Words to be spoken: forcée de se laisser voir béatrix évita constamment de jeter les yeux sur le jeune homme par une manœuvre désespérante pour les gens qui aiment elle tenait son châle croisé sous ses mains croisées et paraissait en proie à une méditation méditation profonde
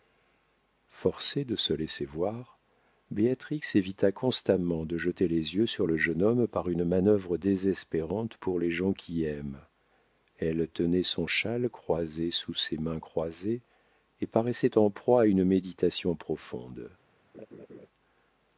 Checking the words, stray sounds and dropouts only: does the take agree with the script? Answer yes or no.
no